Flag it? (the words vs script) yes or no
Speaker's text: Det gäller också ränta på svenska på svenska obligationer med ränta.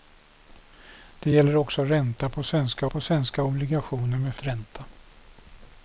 no